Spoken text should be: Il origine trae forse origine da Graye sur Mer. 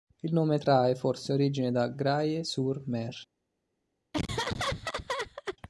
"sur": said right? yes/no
yes